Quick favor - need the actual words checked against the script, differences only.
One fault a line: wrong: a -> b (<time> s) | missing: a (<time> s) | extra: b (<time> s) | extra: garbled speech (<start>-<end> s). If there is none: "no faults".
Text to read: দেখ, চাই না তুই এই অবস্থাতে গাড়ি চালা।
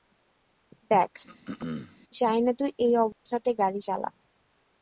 no faults